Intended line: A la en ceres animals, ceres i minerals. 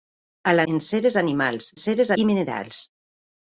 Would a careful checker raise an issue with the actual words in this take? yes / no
no